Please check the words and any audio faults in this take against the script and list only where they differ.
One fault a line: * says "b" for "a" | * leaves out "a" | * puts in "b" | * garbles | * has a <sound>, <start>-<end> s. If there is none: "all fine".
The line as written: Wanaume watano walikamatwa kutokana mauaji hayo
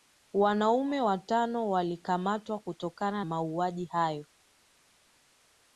all fine